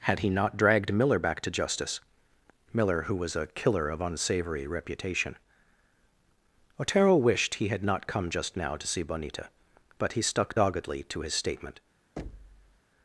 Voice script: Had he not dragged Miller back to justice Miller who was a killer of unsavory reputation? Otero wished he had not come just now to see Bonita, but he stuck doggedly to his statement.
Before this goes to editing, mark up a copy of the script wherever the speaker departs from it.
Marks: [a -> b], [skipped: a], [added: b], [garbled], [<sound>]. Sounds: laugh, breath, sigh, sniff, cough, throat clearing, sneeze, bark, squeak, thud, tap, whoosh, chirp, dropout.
Had he not dragged Miller back to justice Miller who was a killer of unsavory reputation? Otero wished he had not come just now to see Bonita, but he stuck doggedly to his statement. [thud]